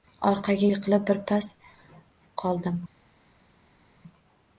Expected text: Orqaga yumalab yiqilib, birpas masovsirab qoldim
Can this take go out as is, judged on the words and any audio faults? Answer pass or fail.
fail